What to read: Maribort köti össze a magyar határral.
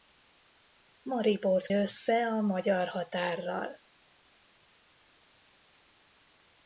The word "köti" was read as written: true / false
false